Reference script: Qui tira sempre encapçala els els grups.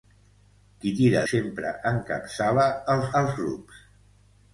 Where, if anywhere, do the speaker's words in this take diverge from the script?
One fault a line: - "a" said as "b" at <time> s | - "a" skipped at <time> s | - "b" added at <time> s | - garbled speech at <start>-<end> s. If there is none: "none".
none